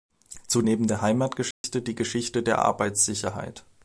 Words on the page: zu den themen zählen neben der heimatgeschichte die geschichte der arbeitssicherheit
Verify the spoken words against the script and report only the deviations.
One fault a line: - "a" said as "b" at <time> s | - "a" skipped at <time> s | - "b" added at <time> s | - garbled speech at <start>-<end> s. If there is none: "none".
- "den themen zählen" skipped at 0.6 s